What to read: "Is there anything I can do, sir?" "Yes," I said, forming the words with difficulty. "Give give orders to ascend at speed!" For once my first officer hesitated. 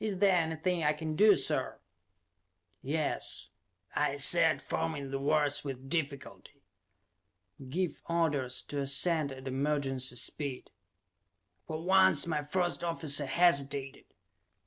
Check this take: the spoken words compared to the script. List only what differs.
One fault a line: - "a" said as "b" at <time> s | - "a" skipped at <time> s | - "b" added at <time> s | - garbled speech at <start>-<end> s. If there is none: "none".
- "give" skipped at 8.0 s
- "emergency" added at 9.5 s